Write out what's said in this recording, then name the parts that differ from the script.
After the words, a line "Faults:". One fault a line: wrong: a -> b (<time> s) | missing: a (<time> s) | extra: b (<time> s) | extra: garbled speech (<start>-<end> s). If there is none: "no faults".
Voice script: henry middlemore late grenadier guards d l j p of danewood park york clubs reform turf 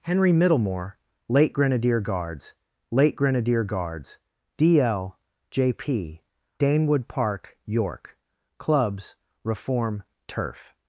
henry middlemore late grenadier guards late grenadier guards d l j p danewood park york clubs reform turf
Faults:
extra: late grenadier guards (2.9 s)
missing: of (6.2 s)